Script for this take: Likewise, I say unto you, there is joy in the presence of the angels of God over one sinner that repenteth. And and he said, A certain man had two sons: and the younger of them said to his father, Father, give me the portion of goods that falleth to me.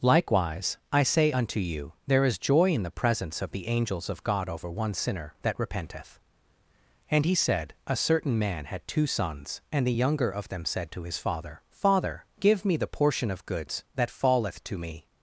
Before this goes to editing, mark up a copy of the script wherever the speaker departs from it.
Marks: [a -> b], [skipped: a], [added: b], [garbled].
Likewise, I say unto you, there is joy in the presence of the angels of God over one sinner that repenteth. And [skipped: and] he said, A certain man had two sons: and the younger of them said to his father, Father, give me the portion of goods that falleth to me.